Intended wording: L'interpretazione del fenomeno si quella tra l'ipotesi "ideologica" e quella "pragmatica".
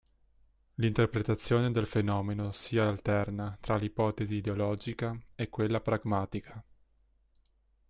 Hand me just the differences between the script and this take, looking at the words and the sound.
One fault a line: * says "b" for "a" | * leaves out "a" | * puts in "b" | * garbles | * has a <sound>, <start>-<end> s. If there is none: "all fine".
* says "alterna" for "quella"